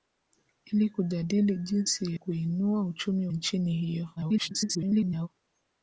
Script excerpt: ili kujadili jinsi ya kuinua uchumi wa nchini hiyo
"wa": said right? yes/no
no